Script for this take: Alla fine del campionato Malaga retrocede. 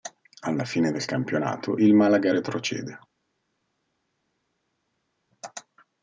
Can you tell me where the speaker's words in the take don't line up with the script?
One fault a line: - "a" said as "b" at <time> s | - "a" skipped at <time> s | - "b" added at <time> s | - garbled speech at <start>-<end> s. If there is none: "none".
- "il" added at 1.7 s